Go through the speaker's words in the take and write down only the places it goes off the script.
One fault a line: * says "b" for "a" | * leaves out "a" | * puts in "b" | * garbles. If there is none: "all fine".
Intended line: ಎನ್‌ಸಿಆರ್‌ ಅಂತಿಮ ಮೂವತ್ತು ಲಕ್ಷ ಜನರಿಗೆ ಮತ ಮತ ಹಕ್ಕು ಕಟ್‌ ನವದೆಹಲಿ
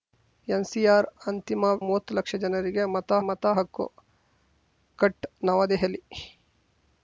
all fine